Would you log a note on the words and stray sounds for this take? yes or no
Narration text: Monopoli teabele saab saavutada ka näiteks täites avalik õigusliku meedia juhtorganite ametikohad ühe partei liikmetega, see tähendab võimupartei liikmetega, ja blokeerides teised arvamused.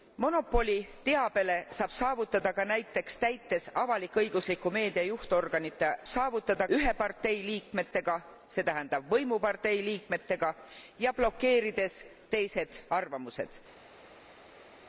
yes